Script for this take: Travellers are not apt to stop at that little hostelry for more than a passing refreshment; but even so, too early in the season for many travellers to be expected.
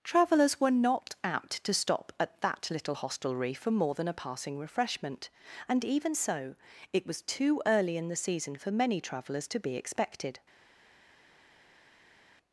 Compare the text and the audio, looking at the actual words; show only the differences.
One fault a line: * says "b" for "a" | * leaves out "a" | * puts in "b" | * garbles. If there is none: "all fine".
* says "were" for "are"
* says "and" for "but"
* puts in "it was"